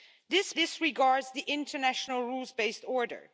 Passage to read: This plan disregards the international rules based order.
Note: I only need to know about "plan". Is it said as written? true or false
false